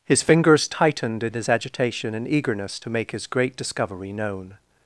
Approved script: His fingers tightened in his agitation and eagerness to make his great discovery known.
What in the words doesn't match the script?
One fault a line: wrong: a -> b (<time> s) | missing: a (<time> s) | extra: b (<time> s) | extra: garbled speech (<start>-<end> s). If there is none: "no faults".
no faults